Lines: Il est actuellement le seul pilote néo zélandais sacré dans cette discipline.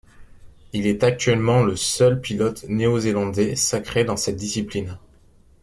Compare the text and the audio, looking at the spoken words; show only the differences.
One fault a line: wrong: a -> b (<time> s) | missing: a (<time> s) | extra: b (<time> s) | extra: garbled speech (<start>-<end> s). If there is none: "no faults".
no faults